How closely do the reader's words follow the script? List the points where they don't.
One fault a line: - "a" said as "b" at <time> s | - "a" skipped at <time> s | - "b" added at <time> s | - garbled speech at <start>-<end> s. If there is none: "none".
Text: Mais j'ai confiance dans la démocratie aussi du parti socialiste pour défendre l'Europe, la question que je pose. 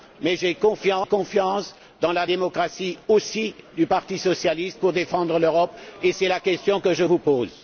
- "et c'est" added at 6.0 s
- "vous" added at 7.0 s